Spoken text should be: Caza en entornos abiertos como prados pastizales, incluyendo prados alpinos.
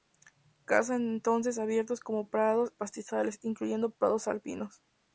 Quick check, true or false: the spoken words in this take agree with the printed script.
true